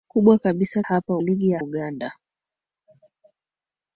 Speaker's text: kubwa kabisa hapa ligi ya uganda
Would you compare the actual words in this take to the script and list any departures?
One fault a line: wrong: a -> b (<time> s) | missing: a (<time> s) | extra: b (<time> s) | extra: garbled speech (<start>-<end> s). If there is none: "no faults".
no faults